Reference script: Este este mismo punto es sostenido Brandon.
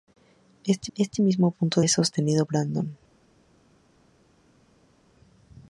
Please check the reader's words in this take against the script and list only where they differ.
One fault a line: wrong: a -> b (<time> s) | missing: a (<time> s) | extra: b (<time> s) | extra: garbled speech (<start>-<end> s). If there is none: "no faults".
no faults